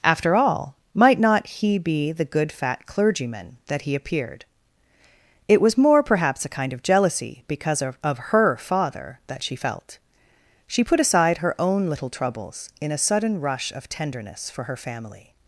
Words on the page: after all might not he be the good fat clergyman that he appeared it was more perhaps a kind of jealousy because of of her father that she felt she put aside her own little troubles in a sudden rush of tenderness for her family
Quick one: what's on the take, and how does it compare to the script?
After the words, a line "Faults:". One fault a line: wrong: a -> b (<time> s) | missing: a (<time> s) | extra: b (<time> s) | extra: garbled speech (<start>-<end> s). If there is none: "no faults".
after all might not he be the good fat clergyman that he appeared it was more perhaps a kind of jealousy because of of her father that she felt she put aside her own little troubles in a sudden rush of tenderness for her family
Faults:
no faults